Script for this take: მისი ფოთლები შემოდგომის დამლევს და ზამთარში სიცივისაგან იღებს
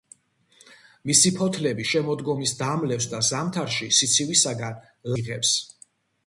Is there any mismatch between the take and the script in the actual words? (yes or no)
no